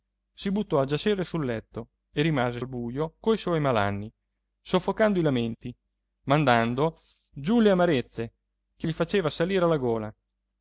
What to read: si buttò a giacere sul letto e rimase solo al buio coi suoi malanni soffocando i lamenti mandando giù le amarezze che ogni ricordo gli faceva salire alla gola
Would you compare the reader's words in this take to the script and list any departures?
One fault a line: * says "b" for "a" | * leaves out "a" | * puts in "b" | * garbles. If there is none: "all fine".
* leaves out "solo"
* leaves out "ogni ricordo"